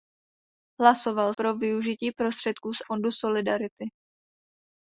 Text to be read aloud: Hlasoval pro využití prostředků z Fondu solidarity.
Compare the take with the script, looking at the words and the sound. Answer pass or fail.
pass